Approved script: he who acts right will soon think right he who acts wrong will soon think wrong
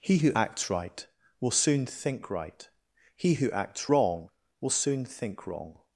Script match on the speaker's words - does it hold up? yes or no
yes